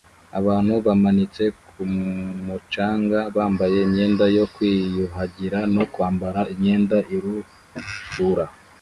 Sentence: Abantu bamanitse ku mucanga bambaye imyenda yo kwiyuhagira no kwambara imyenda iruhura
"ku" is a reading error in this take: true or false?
false